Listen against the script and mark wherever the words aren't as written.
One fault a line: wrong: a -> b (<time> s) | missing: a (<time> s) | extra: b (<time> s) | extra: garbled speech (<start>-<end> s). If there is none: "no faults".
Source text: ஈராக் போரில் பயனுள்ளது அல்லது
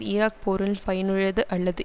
no faults